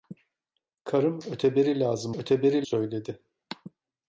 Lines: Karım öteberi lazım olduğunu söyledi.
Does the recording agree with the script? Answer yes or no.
no